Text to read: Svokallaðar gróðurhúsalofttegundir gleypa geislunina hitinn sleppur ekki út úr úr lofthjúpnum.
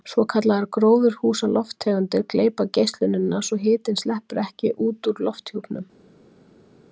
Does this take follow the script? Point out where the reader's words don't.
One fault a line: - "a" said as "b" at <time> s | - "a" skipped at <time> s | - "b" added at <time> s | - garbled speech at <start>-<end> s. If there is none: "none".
- "svo" added at 3.5 s
- "úr" skipped at 5.2 s